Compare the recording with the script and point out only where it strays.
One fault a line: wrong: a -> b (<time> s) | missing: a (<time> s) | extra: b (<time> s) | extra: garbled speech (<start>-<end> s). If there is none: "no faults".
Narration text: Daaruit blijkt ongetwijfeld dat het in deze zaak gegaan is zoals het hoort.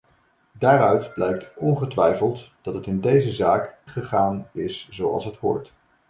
no faults